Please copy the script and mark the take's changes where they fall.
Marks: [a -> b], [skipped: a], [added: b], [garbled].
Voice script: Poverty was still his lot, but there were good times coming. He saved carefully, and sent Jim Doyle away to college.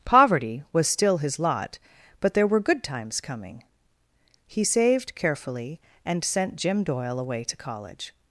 Poverty was still his lot, but there were good times coming. He saved carefully, and sent Jim Doyle away to college.